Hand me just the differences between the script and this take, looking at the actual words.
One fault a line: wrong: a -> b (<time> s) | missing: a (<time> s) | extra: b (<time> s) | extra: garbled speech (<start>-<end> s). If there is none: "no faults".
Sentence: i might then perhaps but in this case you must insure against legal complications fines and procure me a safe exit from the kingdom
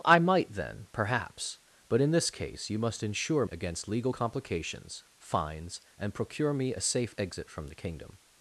no faults